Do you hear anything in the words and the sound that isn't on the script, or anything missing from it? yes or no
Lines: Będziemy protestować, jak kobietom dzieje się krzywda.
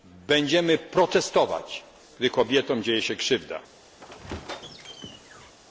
yes